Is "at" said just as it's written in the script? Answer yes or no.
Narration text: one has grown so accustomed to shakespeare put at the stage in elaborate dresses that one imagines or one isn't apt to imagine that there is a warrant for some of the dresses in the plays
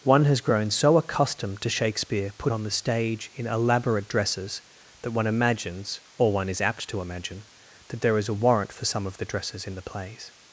no